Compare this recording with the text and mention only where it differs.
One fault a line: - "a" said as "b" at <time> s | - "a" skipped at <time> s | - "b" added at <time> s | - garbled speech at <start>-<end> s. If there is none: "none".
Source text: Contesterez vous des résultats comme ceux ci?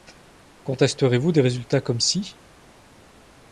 - "ceux" skipped at 2.0 s